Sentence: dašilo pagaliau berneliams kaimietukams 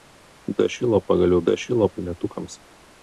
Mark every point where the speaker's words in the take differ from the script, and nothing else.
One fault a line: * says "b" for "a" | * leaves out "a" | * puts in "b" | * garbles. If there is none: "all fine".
* says "dašilo" for "berneliams"